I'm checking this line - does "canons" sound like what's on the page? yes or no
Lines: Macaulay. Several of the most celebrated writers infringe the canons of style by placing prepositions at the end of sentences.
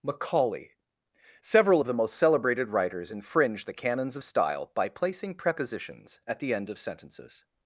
yes